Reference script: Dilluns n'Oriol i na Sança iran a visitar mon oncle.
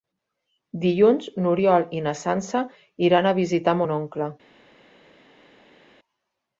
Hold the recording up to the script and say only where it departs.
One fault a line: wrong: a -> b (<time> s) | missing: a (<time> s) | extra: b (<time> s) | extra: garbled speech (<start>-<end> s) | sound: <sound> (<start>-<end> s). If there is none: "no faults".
no faults